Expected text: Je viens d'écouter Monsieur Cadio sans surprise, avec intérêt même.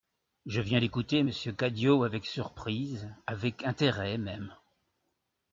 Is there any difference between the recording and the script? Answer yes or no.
yes